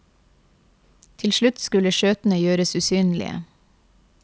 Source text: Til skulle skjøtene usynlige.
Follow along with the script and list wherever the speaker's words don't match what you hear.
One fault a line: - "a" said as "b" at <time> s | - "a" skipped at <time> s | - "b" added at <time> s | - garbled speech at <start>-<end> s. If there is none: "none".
- "slutt" added at 1.3 s
- "gjøres" added at 2.4 s